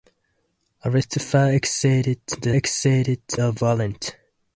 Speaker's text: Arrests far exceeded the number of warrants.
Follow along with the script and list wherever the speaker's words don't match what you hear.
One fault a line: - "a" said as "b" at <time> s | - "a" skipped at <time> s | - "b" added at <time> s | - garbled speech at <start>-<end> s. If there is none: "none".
- "number" said as "exceeded" at 2.5 s